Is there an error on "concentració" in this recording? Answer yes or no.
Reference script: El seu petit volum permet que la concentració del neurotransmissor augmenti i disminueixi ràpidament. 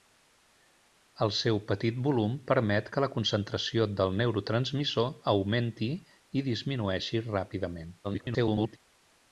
no